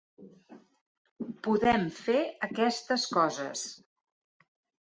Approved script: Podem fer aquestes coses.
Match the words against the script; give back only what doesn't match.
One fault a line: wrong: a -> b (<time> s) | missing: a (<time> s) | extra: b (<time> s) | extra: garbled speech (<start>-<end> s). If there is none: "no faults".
no faults